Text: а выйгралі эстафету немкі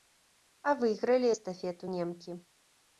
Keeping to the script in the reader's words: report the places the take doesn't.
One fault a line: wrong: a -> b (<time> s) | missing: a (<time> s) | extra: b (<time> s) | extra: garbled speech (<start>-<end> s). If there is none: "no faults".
no faults